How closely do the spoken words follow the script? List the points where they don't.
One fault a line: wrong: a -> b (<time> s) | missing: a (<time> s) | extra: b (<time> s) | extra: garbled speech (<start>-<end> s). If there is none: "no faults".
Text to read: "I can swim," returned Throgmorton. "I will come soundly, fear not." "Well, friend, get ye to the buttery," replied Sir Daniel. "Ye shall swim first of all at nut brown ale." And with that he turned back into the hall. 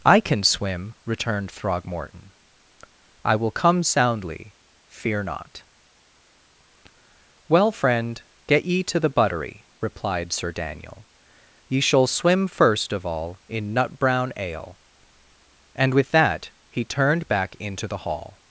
wrong: at -> in (13.5 s)